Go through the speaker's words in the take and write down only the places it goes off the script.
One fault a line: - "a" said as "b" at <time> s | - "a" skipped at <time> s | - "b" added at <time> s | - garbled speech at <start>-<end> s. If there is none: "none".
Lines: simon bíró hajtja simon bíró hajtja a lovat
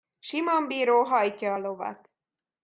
- "simon bíró hajtja" skipped at 1.5 s